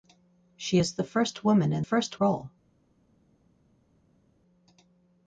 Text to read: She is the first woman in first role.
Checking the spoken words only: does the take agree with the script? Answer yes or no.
yes